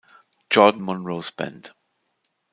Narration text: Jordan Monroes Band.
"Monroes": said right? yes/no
yes